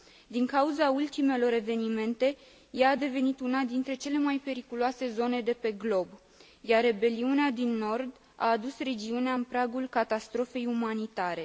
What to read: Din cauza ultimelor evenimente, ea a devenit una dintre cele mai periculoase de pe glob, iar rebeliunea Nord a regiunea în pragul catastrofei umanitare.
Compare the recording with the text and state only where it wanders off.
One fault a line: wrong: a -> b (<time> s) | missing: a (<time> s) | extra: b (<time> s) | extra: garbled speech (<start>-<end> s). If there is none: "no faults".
extra: zone (5.1 s)
extra: din (7.5 s)
extra: adus (8.5 s)